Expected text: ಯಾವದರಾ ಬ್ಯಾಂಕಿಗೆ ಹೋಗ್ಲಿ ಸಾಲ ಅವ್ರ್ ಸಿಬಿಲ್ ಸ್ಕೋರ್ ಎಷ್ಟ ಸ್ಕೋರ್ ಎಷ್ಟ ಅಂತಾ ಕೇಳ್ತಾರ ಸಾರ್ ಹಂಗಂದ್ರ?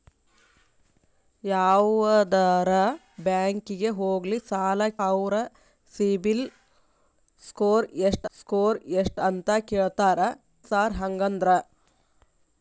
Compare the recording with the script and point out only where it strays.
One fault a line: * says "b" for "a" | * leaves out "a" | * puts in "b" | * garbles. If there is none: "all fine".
all fine